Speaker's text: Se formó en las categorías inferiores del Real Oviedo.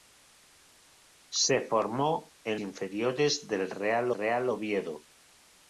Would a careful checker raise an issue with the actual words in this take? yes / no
yes